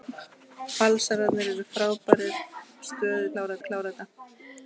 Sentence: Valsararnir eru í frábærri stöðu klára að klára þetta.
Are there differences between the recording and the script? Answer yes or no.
no